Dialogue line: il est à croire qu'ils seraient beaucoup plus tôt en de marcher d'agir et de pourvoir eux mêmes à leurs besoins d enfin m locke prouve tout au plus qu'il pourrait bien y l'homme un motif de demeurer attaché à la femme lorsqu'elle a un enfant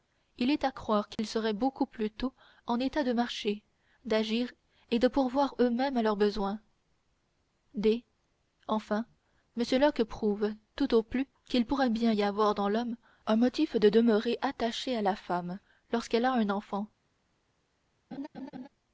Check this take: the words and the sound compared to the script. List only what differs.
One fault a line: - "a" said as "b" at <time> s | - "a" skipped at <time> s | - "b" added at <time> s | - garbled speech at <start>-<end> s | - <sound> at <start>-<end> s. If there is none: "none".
- dropout at 1.2-1.2 s
- "état" added at 2.8 s
- "avoir dans" added at 12.2 s
- laugh at 18.1-18.7 s